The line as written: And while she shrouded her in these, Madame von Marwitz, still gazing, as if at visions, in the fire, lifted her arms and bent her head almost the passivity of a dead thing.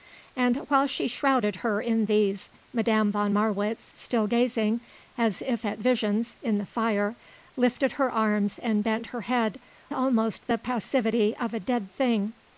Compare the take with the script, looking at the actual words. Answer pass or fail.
pass